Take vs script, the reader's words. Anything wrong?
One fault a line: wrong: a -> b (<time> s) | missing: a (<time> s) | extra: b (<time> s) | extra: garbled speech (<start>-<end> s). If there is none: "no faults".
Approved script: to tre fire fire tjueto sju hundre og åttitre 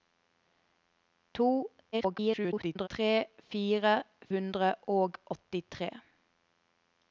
extra: garbled speech (1.9-2.9 s)
missing: fire tjueto sju (3.9 s)